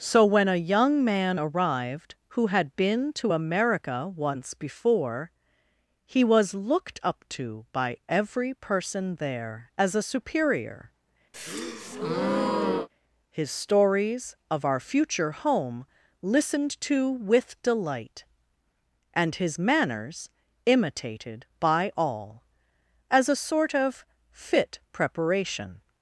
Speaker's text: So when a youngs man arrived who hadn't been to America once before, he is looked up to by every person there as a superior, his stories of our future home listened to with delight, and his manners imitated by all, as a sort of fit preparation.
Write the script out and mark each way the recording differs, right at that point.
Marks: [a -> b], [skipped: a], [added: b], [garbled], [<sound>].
So when a [youngs -> young] man arrived who [hadn't -> had] been to America once before, he [is -> was] looked up to by every person there as a superior, [breath] his stories of our future home listened to with delight, and his manners imitated by all, as a sort of fit preparation.